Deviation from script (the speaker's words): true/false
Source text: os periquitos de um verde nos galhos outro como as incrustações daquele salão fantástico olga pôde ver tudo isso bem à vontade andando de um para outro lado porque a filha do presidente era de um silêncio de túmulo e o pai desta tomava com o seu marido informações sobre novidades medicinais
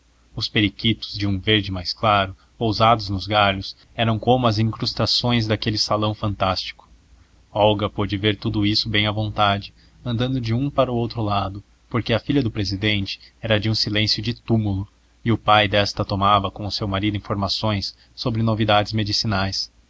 true